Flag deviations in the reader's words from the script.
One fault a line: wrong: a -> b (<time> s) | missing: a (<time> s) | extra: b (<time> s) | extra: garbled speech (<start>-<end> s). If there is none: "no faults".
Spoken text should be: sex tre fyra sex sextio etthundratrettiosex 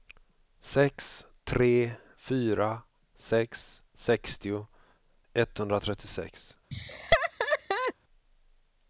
no faults